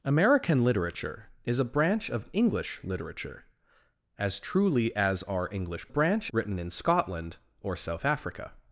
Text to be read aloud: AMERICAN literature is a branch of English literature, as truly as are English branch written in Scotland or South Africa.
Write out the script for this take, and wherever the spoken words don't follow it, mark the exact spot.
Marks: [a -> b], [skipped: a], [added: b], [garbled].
AMERICAN literature is a branch of English literature, as truly as are English branch written in Scotland or South Africa.